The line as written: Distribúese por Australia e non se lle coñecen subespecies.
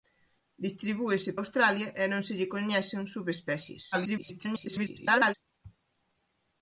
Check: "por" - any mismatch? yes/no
yes